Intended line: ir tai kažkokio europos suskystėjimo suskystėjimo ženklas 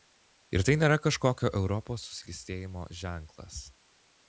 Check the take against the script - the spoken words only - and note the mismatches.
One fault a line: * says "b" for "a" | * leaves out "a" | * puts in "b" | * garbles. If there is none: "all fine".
* puts in "nėra"
* leaves out "suskystėjimo"